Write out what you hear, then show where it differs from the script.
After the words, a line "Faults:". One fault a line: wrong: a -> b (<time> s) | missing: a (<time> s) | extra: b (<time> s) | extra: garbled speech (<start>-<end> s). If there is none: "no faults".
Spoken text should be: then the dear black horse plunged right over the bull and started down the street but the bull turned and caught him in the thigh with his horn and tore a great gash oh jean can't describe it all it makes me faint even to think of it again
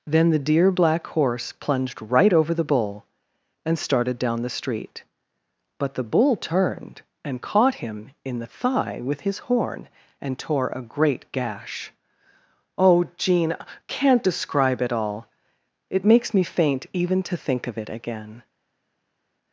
then the dear black horse plunged right over the bull and started down the street but the bull turned and caught him in the thigh with his horn and tore a great gash oh jean can't describe it all it makes me faint even to think of it again
Faults:
no faults